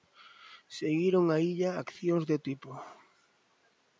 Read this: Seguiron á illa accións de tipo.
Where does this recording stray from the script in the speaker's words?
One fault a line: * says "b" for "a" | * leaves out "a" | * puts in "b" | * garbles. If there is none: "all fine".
all fine